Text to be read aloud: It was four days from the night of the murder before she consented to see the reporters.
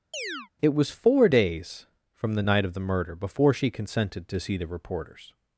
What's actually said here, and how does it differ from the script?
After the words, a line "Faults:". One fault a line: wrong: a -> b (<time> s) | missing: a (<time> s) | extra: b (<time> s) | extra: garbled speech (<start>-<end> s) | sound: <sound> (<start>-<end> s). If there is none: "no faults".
It was four days from the night of the murder before she consented to see the reporters.
Faults:
sound: chirp (0.1-0.5 s)